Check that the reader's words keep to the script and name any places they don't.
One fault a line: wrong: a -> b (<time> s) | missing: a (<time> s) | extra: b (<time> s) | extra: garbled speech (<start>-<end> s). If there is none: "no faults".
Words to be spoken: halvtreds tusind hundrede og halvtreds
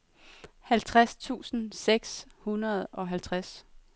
extra: seks (1.7 s)